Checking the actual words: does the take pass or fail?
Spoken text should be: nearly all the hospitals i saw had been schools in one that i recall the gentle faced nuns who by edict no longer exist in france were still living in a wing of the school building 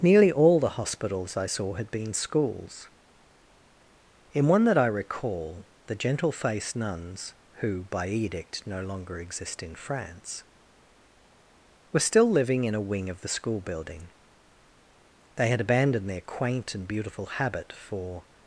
fail